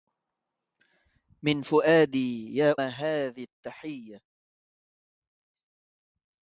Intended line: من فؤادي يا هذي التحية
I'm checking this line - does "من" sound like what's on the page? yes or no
yes